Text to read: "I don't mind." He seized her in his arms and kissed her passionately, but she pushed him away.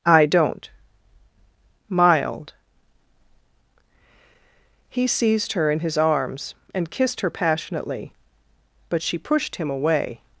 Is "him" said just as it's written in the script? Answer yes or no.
yes